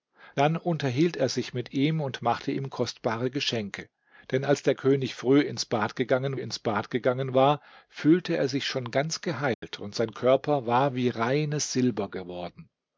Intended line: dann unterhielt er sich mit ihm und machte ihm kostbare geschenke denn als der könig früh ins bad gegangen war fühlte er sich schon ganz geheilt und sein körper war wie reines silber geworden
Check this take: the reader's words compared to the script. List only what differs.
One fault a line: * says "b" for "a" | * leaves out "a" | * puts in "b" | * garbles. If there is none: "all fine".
* puts in "ins bad gegangen"